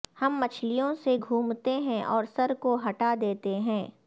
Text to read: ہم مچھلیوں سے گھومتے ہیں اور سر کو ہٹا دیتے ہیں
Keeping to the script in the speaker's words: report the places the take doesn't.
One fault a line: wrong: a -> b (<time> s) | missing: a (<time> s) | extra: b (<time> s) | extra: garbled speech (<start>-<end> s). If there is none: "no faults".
no faults